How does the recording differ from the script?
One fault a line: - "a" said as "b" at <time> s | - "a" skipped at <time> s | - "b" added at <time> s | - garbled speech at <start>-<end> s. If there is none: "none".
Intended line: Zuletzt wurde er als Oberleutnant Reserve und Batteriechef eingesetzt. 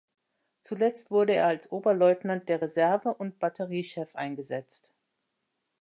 - "der" added at 2.5 s